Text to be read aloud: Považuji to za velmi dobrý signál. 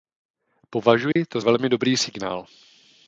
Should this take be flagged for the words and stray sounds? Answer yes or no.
yes